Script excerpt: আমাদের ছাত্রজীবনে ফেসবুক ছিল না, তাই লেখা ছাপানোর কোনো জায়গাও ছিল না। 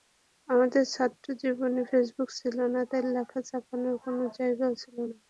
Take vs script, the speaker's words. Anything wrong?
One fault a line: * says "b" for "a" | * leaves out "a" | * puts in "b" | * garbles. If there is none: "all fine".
all fine